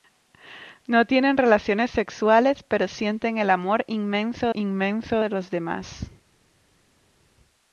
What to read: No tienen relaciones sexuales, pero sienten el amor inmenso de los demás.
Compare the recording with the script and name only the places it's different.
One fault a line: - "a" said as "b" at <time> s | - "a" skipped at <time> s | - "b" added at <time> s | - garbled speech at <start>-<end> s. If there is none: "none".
- "inmenso" added at 4.5 s